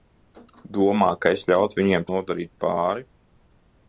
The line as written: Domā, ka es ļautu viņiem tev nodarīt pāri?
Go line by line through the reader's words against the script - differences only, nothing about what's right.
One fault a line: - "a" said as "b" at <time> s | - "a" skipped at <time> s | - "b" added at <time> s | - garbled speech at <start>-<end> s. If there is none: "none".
- "tev" skipped at 2.1 s